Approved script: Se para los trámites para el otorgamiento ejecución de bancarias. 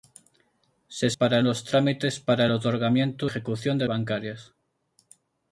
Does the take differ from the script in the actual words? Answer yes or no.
no